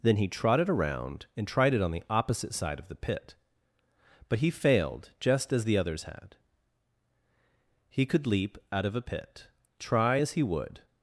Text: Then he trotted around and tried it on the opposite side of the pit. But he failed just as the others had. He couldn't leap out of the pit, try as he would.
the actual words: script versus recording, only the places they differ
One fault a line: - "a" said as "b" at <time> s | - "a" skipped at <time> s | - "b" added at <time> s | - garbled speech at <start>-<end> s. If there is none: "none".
- "couldn't" said as "could" at 8.1 s
- "the" said as "a" at 8.9 s